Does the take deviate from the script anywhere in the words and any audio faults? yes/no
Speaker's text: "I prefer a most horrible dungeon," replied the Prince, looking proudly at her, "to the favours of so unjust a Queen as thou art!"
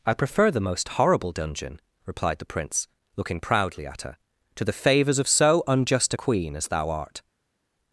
yes